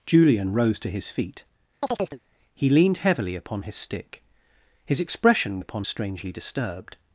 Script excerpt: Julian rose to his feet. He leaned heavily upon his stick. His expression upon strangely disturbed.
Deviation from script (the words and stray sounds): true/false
true